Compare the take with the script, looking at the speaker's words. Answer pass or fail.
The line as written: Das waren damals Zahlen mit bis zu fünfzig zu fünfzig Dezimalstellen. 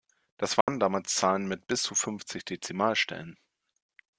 fail